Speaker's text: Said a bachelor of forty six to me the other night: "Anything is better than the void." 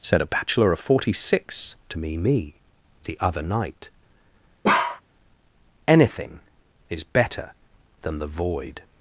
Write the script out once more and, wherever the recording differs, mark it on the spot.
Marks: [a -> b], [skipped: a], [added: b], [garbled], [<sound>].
Said a bachelor of forty six to me [added: me] the other night: [bark] "Anything is better than the void."